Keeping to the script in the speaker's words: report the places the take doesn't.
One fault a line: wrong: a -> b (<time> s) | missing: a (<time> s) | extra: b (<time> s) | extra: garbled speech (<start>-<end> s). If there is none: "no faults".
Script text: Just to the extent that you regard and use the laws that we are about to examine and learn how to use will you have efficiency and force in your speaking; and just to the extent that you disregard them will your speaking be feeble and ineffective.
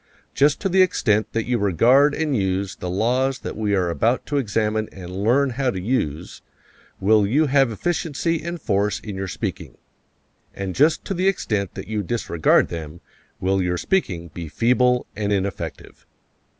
no faults